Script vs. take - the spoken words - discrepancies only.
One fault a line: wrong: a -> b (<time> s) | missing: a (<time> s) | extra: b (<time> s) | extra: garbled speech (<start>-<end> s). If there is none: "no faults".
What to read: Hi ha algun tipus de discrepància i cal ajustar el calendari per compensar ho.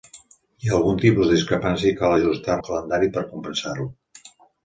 no faults